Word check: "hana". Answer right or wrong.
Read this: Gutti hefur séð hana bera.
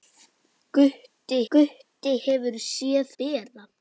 wrong